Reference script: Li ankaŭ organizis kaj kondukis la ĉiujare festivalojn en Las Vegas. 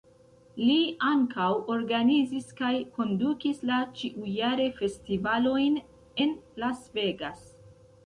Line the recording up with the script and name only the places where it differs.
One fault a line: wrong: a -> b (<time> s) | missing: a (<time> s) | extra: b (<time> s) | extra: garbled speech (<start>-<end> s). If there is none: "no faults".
no faults